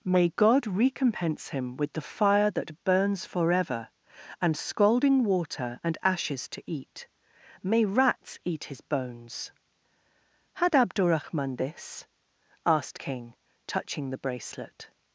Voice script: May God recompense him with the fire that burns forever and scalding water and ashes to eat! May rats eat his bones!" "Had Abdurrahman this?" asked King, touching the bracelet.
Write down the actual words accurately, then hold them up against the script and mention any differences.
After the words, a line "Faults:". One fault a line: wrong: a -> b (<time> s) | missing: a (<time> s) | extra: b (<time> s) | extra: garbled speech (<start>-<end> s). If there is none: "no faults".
May God recompense him with the fire that burns forever and scalding water and ashes to eat! May rats eat his bones!" "Had Abdurrahman this?" asked King, touching the bracelet.
Faults:
no faults